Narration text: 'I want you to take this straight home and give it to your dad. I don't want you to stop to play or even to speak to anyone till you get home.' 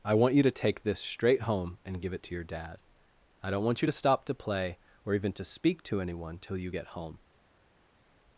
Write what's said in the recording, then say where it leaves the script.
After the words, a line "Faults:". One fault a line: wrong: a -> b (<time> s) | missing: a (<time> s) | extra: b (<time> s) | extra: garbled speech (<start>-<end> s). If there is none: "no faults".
'I want you to take this straight home and give it to your dad. I don't want you to stop to play or even to speak to anyone till you get home.'
Faults:
no faults